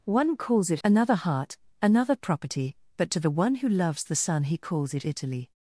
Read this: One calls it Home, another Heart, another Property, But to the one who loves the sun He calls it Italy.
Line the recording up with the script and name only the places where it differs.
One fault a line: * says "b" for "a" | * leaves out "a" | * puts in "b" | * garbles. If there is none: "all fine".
* leaves out "Home"